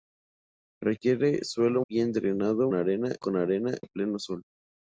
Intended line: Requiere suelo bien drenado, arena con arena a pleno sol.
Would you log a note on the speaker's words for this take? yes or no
no